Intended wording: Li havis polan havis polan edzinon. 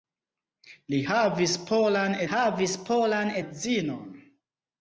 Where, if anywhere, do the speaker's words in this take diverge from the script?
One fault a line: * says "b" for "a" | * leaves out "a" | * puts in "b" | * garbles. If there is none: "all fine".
all fine